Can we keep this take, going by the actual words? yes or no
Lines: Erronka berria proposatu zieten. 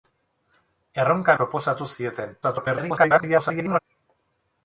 no